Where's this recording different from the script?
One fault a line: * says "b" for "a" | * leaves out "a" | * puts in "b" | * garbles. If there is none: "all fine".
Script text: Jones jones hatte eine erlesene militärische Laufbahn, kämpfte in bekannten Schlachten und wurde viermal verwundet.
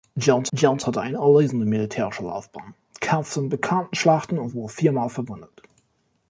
all fine